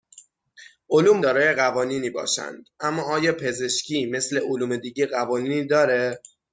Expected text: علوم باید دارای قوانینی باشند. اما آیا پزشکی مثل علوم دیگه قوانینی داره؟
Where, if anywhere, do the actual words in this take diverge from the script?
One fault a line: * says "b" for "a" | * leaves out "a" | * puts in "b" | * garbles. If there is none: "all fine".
* leaves out "باید"